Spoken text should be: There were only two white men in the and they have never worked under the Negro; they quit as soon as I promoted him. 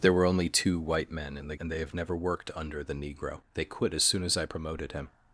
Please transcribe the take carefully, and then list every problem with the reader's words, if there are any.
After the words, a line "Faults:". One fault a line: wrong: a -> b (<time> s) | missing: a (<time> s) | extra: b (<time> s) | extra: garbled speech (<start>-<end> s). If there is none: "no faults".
There were only two white men in the and they have never worked under the Negro; they quit as soon as I promoted him.
Faults:
no faults